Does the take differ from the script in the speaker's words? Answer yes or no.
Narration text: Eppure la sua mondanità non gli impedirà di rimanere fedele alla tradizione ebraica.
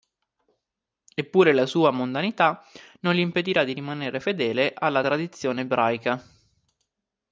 no